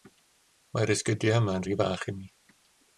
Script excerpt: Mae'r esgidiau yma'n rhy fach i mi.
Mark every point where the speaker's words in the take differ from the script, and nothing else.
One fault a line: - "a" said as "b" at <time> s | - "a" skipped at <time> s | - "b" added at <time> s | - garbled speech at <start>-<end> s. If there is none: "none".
none